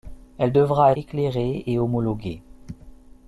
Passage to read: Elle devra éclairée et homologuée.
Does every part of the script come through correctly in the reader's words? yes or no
yes